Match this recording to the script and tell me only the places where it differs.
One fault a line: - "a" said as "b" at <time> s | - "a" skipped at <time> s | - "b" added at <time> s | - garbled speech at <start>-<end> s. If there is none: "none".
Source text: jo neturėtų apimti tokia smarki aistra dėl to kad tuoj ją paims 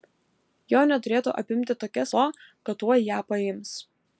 - "smarki aistra dėl" skipped at 2.0 s